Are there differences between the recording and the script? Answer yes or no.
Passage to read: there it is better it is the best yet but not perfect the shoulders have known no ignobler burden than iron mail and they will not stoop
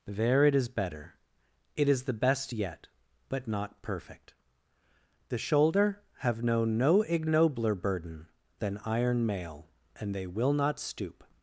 yes